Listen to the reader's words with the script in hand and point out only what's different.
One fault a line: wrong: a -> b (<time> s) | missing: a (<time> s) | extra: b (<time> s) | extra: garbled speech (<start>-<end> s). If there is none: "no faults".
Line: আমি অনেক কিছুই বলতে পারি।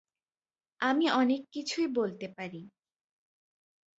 no faults